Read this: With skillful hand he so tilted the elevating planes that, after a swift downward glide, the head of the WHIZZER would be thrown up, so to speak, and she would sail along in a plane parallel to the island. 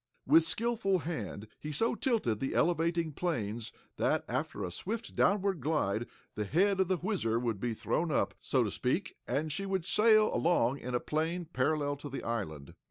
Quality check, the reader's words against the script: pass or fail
pass